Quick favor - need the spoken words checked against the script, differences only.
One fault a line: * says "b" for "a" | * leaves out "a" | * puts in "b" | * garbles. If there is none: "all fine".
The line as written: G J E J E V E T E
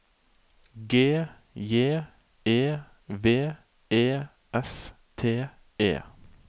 * says "V" for "J"
* says "S" for "V E"